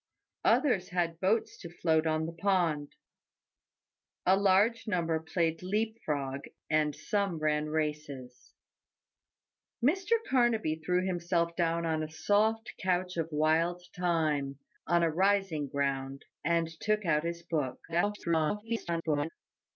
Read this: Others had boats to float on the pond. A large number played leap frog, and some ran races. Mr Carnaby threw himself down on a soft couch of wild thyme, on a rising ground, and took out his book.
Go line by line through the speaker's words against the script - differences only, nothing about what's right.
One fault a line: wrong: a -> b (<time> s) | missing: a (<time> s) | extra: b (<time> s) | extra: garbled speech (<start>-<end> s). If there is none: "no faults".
extra: garbled speech (17.9-19.3 s)